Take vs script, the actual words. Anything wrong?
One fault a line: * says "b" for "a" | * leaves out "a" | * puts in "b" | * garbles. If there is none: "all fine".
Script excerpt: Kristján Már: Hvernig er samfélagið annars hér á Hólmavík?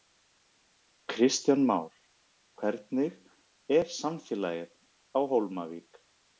* leaves out "annars hér"